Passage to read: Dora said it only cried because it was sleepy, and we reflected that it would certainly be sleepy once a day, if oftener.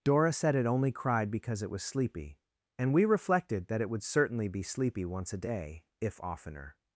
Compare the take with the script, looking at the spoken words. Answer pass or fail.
pass